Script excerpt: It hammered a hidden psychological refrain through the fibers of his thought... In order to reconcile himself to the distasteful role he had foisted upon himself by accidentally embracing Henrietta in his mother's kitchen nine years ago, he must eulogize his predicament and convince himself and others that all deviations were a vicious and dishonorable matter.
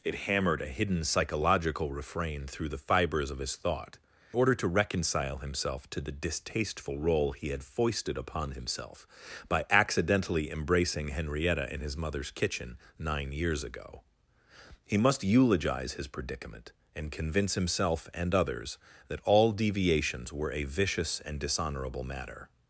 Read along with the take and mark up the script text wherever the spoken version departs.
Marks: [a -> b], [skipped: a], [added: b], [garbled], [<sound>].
It hammered a hidden psychological refrain through the fibers of his thought... [skipped: In] order to reconcile himself to the distasteful role he had foisted upon himself by accidentally embracing Henrietta in his mother's kitchen nine years ago, he must eulogize his predicament and convince himself and others that all deviations were a vicious and dishonorable matter.